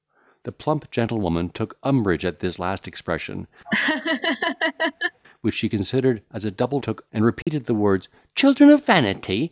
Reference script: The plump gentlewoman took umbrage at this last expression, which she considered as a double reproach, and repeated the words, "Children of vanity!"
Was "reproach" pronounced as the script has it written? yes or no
no